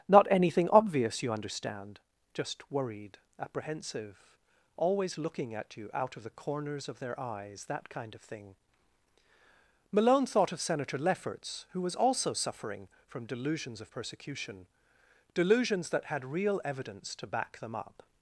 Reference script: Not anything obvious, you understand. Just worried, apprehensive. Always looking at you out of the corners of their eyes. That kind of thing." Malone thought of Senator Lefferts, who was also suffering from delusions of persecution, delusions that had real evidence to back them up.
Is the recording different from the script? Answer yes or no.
no